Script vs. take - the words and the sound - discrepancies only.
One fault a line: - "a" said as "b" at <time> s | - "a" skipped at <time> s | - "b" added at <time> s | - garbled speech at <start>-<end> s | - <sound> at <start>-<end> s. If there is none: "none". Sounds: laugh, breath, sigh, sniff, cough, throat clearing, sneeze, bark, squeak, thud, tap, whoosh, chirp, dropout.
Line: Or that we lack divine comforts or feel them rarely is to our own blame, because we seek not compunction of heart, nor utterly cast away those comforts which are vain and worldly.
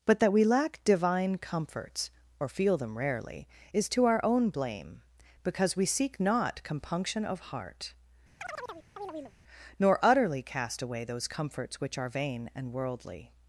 - "Or" said as "But" at 0.1 s
- chirp at 8.4-9.4 s